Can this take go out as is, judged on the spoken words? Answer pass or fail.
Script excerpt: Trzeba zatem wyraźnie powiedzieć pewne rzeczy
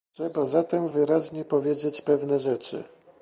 pass